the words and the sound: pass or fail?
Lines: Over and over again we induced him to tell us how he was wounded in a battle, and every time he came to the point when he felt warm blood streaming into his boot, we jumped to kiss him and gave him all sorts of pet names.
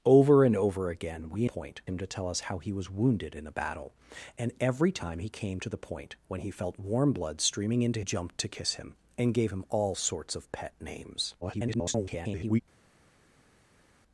fail